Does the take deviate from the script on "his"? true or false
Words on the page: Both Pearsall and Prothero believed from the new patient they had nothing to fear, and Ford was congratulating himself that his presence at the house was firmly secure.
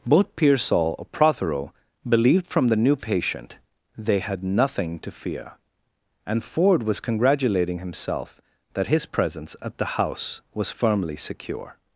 false